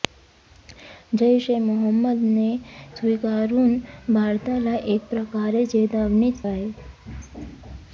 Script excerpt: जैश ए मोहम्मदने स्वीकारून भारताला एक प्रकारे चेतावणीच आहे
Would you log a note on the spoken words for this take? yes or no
no